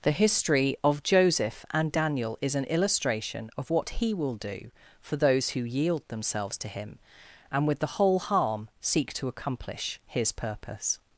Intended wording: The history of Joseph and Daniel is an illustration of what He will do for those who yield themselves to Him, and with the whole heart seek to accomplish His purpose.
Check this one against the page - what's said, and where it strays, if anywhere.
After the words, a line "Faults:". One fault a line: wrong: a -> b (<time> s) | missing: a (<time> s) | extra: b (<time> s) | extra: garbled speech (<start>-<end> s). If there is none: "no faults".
The history of Joseph and Daniel is an illustration of what He will do for those who yield themselves to Him, and with the whole harm seek to accomplish His purpose.
Faults:
wrong: heart -> harm (8.2 s)